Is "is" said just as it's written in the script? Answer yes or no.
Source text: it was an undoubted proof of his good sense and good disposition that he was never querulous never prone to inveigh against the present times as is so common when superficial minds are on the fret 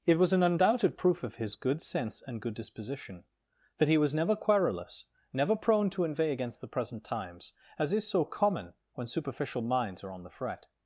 yes